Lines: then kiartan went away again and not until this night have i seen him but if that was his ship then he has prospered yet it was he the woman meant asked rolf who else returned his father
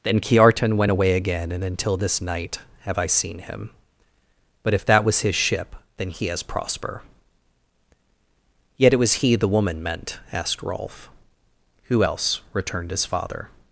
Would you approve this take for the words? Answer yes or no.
no